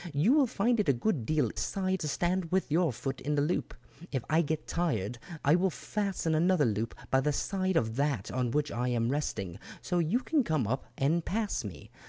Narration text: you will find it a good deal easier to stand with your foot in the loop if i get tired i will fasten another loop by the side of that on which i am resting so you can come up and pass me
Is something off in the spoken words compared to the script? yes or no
yes